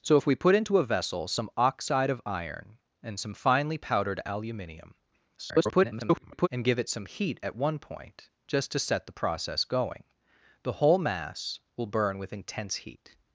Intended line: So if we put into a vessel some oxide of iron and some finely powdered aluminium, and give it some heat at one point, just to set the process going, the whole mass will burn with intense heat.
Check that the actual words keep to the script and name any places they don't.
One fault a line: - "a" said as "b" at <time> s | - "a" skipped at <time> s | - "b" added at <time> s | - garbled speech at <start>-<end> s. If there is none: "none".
- garbled speech at 5.4-6.5 s